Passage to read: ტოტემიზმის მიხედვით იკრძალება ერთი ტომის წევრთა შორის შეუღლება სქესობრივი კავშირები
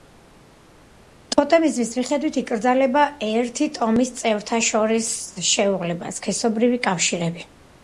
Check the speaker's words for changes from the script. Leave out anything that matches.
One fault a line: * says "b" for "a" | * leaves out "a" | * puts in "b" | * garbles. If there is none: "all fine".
all fine